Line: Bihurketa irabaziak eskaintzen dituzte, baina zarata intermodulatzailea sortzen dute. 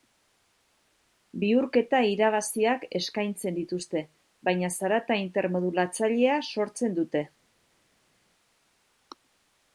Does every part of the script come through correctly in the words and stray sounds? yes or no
yes